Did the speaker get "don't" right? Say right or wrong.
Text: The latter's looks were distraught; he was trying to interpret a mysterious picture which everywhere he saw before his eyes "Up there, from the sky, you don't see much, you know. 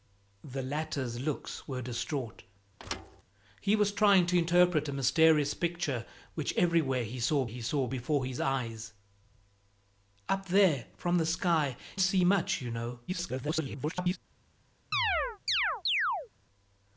wrong